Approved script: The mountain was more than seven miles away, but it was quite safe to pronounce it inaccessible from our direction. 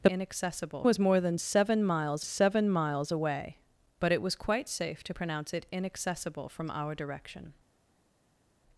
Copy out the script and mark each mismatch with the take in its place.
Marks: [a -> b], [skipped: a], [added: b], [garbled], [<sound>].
The [mountain -> inaccessible] was more than seven miles [added: seven miles] away, but it was quite safe to pronounce it inaccessible from our direction.